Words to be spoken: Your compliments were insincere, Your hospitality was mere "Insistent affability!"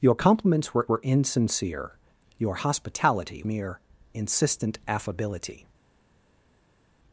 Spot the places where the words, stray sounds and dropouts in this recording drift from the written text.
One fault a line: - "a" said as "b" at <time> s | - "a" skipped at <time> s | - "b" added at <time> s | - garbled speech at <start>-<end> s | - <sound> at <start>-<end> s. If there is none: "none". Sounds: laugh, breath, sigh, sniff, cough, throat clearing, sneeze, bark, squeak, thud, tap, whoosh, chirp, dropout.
- "were" added at 0.9 s
- "was" skipped at 3.4 s